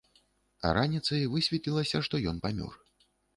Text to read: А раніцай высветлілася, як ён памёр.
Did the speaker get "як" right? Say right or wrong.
wrong